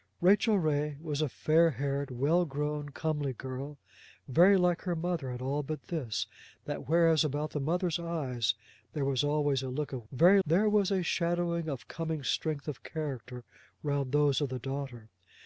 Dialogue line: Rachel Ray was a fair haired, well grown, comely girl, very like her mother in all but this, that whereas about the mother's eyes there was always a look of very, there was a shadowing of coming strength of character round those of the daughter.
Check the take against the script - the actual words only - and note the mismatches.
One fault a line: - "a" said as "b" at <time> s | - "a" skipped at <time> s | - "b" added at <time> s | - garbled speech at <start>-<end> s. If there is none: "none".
none